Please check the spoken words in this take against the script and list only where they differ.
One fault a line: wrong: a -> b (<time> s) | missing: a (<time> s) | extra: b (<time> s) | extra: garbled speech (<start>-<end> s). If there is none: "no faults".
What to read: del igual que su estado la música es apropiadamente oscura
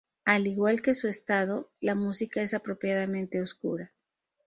wrong: del -> al (0.2 s)